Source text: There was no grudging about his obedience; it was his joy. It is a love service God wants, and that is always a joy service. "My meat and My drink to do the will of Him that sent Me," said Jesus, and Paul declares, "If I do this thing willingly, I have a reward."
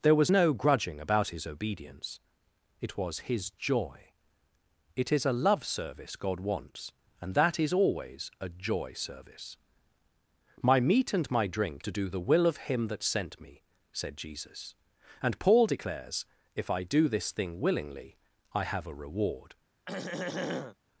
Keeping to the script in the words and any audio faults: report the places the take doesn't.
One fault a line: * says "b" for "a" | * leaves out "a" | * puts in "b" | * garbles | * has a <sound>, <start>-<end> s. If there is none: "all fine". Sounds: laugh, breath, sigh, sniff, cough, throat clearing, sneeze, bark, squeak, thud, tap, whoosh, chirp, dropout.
* has a throat clearing, 19.9-20.8 s